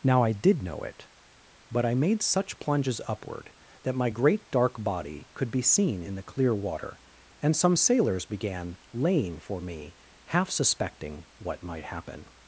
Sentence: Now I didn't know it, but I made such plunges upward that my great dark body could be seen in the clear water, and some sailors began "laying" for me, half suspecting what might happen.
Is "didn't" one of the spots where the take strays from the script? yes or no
yes